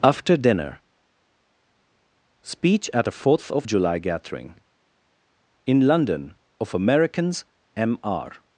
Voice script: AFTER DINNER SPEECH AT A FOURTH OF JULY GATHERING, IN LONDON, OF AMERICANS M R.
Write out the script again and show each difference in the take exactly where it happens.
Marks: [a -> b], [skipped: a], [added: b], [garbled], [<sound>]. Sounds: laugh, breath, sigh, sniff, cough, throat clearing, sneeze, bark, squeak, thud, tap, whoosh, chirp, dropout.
AFTER DINNER SPEECH AT A FOURTH OF JULY GATHERING, IN LONDON, OF AMERICANS M R.